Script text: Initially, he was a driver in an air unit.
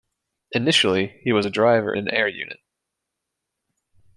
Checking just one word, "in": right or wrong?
wrong